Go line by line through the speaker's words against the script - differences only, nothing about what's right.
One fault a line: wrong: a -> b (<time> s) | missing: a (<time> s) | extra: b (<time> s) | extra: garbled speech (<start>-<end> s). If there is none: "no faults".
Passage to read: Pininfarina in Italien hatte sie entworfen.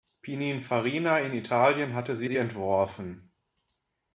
extra: sie (2.2 s)